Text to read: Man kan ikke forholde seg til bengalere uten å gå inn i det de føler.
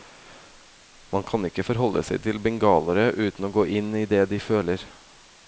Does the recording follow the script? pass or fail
pass